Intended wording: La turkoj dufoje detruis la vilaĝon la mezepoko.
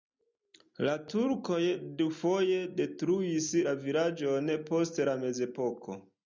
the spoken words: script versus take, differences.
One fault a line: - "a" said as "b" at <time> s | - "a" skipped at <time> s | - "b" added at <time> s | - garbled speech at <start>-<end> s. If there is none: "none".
- "post" added at 4.7 s